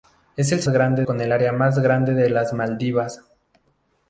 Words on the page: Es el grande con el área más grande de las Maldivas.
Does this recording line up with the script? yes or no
yes